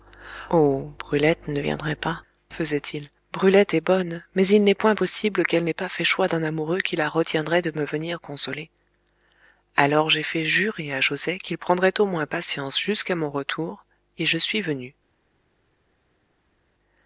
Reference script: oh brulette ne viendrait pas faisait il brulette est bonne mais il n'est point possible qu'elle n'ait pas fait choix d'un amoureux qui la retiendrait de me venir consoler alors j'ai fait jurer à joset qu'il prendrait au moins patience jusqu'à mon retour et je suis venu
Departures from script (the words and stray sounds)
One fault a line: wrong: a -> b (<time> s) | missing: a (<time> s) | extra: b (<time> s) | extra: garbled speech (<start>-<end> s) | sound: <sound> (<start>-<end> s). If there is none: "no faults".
no faults